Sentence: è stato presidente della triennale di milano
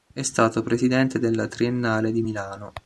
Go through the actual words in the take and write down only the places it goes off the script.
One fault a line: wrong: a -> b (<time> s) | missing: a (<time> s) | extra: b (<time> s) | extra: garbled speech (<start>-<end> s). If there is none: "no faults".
no faults